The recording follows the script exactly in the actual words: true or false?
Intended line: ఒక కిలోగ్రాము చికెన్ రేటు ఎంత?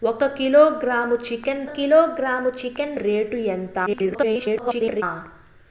false